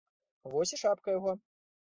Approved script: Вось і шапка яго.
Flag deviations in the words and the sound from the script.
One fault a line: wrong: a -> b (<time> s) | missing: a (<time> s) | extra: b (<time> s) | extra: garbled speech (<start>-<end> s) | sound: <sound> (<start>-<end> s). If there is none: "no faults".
no faults